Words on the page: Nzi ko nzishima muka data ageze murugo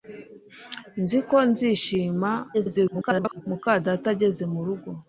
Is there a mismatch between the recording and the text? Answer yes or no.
yes